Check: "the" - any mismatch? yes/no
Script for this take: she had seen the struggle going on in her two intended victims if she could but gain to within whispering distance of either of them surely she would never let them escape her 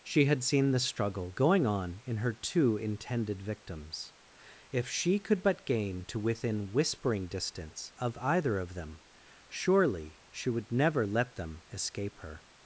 no